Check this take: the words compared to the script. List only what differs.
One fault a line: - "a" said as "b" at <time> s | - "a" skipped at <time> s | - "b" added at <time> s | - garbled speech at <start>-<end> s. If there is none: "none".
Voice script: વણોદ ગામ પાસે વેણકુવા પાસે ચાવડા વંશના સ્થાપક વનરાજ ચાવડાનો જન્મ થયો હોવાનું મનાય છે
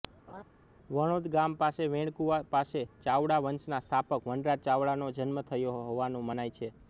none